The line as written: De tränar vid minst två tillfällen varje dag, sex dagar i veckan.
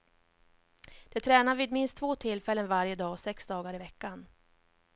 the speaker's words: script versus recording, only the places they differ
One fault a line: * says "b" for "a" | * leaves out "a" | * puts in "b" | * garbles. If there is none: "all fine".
all fine